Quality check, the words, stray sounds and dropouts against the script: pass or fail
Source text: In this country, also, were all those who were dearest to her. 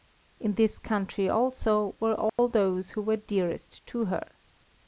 fail